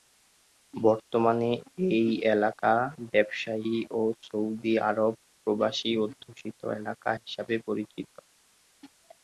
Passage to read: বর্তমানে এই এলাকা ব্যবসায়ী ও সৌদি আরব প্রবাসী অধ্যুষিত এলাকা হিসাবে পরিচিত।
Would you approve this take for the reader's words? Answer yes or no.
yes